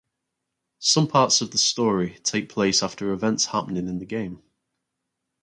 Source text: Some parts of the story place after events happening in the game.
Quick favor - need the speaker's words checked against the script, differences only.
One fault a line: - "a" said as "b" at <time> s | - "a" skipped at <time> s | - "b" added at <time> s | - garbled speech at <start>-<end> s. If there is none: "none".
- "take" added at 2.2 s